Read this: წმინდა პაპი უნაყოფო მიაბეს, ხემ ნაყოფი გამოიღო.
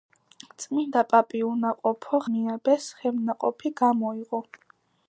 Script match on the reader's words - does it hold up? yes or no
yes